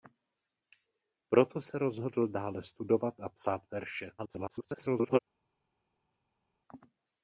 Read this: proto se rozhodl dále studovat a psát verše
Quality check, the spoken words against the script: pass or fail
fail